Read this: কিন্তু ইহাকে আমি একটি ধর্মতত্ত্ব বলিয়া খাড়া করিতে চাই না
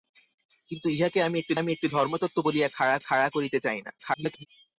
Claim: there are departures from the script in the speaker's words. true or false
true